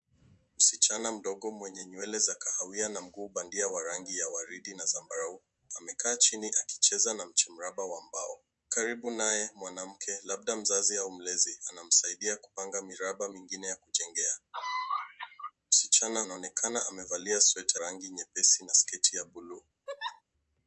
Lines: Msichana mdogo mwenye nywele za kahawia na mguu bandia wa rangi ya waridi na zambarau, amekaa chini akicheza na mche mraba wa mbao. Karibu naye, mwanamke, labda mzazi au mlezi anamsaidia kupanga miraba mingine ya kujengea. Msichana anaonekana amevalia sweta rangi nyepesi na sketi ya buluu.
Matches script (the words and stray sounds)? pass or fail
fail